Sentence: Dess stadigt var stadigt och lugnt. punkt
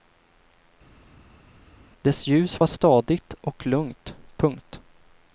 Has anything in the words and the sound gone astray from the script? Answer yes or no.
yes